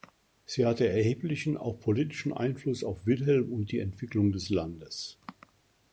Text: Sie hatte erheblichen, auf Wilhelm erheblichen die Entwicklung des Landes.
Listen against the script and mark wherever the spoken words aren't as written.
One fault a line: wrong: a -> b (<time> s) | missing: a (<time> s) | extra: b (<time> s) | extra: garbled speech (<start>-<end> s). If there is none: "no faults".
extra: auch politischen Einfluss (1.6 s)
wrong: erheblichen -> und (3.5 s)